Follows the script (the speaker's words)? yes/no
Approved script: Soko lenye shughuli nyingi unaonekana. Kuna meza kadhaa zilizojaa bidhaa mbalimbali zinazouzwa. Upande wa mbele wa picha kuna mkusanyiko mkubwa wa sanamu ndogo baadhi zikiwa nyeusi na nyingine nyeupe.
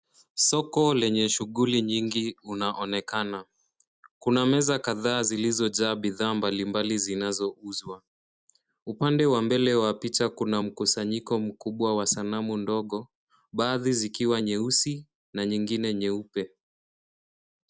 yes